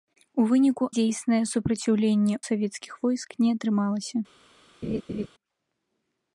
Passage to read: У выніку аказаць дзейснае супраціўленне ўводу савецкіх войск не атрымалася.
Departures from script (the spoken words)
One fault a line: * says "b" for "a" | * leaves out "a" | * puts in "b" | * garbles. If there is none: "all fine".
* leaves out "аказаць"
* leaves out "ўводу"